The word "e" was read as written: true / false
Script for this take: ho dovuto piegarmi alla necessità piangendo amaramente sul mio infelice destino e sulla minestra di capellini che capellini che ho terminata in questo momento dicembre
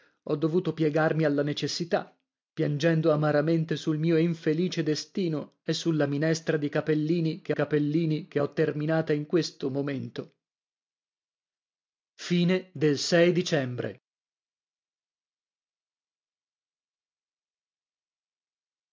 true